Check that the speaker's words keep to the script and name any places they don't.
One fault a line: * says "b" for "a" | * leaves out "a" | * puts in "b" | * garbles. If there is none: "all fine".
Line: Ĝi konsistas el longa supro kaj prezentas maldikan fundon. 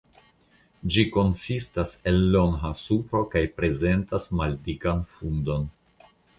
all fine